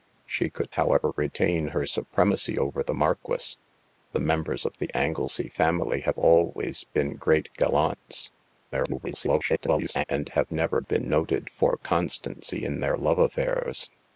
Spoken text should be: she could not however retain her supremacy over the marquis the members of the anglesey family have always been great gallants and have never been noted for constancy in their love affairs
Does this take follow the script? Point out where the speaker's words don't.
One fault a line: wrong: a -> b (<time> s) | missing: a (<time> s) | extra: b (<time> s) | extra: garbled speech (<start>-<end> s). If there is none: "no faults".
missing: not (0.8 s)
extra: garbled speech (8.7-10.0 s)